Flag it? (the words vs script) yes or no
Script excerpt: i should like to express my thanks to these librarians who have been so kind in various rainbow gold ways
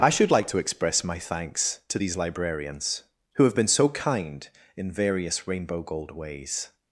no